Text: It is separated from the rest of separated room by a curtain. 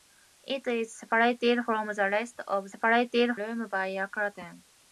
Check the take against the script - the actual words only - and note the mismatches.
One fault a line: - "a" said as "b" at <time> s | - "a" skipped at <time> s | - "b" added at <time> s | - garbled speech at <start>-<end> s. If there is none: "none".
none